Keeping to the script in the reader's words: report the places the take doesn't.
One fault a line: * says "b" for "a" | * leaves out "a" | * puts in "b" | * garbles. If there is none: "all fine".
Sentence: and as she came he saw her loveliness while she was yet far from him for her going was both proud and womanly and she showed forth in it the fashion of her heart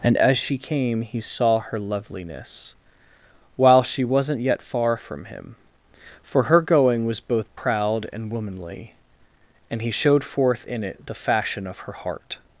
* says "wasn't" for "was"
* says "he" for "she"